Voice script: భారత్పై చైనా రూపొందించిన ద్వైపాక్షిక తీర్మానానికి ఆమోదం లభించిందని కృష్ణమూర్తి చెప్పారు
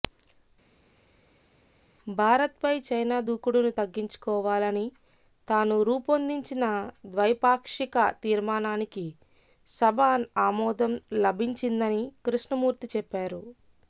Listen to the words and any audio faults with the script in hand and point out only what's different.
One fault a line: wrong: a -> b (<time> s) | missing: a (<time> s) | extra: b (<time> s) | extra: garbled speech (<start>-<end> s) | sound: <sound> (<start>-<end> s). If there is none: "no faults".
extra: దూకుడును తగ్గించుకోవాలని తాను (3.3 s)
extra: సభ (9.7 s)